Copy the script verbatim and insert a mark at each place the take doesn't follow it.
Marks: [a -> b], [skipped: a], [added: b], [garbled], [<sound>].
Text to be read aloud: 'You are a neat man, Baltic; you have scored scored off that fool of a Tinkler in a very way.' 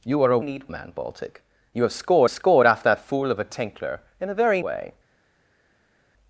'You are a neat man, Baltic; you have scored scored off that fool of a Tinkler in a very way.'